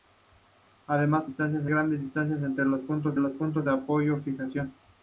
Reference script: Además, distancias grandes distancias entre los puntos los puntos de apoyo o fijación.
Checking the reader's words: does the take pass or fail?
pass